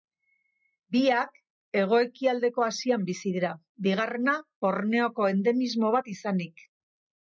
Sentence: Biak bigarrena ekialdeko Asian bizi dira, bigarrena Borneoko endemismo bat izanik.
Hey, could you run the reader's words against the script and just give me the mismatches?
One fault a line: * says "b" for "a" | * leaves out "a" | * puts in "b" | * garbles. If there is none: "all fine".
* says "hego" for "bigarrena"